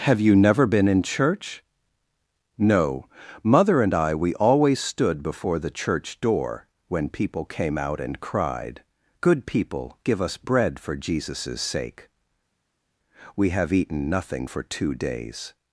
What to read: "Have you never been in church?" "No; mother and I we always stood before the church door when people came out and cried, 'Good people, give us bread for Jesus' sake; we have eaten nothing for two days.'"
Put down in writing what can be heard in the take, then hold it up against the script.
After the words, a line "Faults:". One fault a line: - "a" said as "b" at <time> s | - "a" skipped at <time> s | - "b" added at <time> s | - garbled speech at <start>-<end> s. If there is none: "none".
"Have you never been in church?" "No; mother and I we always stood before the church door when people came out and cried, 'Good people, give us bread for Jesus' sake; we have eaten nothing for two days.'"
Faults:
none